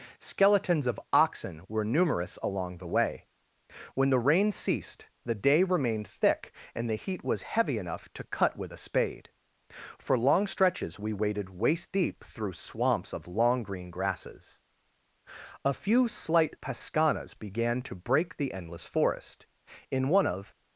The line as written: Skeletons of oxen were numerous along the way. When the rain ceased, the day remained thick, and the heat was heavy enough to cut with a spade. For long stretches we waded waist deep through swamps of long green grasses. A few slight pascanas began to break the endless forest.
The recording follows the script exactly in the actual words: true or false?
false